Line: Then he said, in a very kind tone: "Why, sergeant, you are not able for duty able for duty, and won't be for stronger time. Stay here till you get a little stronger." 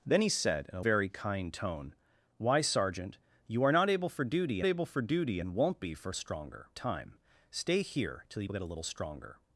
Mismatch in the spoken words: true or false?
false